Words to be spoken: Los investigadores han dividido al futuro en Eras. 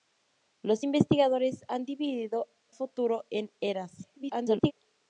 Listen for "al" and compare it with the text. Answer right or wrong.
wrong